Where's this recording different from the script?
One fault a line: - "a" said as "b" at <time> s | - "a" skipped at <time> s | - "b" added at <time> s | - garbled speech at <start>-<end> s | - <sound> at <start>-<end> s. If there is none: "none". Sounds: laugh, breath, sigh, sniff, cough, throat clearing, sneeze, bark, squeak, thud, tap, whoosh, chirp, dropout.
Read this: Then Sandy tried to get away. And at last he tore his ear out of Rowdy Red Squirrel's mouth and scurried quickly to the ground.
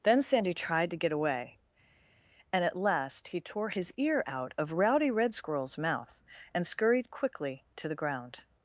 none